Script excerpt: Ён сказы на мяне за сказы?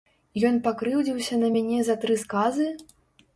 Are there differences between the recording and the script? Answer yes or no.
yes